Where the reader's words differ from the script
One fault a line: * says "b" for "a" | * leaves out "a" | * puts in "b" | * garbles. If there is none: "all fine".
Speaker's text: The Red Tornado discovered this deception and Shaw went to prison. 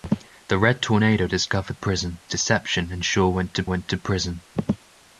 * says "prison" for "this"
* puts in "went to"